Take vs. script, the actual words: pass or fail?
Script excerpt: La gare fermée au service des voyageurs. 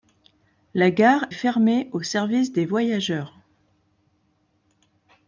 pass